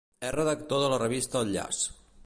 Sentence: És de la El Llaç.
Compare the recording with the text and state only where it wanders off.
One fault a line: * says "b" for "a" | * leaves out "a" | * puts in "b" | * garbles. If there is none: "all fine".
* puts in "redactor"
* puts in "revista"